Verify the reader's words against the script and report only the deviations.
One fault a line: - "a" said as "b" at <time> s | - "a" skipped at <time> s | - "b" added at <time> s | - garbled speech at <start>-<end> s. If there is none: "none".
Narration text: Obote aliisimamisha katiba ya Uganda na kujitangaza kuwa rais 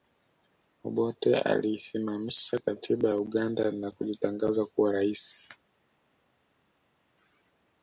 none